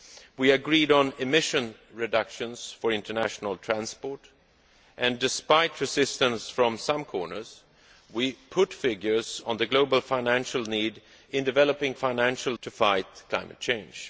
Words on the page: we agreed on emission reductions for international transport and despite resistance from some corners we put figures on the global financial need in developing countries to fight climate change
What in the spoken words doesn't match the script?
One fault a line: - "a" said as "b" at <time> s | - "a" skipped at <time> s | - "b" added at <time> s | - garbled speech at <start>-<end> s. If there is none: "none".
- "countries" said as "financial" at 11.9 s